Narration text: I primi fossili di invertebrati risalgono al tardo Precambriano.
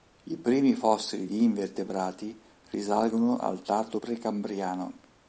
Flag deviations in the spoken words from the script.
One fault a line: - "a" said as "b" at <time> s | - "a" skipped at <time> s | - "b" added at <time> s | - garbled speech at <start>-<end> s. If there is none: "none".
none